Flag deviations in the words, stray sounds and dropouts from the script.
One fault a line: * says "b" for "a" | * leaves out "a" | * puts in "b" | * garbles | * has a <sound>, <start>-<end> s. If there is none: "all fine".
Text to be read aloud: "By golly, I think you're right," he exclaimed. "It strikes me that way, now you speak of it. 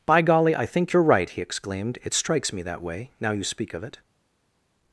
all fine